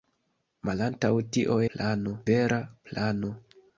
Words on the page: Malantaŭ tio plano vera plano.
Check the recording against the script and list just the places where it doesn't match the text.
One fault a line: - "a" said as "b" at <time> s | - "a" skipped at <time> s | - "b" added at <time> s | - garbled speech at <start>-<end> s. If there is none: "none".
none